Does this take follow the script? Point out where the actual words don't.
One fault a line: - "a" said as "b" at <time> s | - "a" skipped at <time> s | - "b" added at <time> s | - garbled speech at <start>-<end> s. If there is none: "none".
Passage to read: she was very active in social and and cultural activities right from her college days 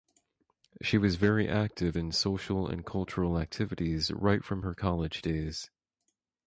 - "and" skipped at 2.9 s